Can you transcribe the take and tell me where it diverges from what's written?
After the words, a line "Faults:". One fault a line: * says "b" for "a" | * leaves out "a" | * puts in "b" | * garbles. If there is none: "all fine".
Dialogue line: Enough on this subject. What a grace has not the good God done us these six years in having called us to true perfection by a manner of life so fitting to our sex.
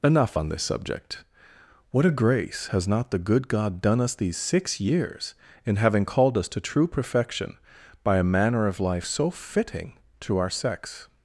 Enough on this subject. What a grace has not the good God done us these six years in having called us to true perfection by a manner of life so fitting to our sex.
Faults:
all fine